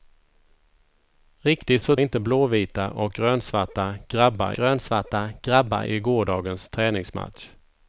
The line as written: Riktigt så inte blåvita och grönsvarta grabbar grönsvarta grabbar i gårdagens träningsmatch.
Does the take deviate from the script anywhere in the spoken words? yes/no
no